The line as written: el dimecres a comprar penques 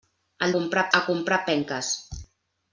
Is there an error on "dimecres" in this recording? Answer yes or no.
yes